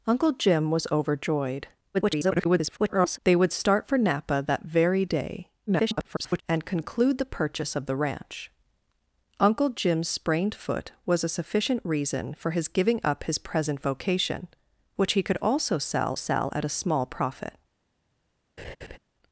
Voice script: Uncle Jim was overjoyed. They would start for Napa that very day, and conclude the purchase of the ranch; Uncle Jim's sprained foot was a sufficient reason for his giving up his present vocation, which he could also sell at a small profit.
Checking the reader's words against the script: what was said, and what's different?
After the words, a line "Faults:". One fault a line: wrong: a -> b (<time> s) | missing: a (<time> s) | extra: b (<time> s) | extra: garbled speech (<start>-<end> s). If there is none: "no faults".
Uncle Jim was overjoyed. [garbled] They would start for Napa that very day, [garbled] and conclude the purchase of the ranch; Uncle Jim's sprained foot was a sufficient reason for his giving up his present vocation, which he could also sell sell at a small profit.
Faults:
extra: garbled speech (1.9-3.2 s)
extra: garbled speech (5.7-6.4 s)
extra: sell (16.1 s)